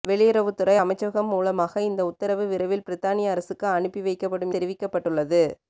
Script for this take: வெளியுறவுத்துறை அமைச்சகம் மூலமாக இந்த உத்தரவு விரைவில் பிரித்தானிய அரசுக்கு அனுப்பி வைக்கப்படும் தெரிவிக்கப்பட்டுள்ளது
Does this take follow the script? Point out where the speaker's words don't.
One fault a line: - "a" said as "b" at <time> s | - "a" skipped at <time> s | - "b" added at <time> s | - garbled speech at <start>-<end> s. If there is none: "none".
none